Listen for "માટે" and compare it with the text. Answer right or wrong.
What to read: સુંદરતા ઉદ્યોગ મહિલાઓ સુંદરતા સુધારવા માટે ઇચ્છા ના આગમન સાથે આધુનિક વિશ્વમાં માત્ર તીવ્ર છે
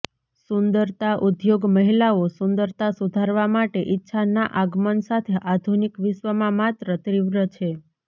right